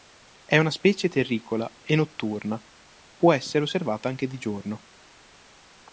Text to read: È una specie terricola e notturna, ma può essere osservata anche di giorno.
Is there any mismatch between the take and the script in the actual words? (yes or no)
yes